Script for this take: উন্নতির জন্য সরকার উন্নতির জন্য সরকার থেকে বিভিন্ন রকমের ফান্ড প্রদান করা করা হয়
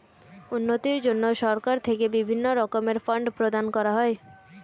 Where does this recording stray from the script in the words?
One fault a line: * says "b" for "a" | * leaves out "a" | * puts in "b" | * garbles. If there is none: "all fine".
* leaves out "উন্নতির জন্য সরকার"
* leaves out "করা"